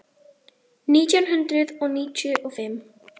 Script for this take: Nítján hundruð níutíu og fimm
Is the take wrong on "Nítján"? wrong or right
right